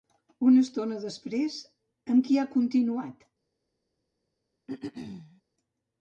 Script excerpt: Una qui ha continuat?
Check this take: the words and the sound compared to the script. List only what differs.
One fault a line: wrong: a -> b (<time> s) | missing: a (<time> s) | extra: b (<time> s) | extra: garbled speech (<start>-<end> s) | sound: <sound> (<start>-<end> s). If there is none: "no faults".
extra: estona després amb (0.7 s)
sound: throat clearing (4.7-5.4 s)